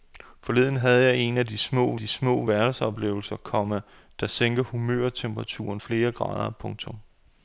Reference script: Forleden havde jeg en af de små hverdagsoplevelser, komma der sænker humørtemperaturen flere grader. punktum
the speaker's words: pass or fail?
fail